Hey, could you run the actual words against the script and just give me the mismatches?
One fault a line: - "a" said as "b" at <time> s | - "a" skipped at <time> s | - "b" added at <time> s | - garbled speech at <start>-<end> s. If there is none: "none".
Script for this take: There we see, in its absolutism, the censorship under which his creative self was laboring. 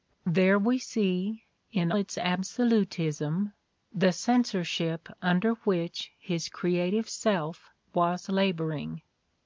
none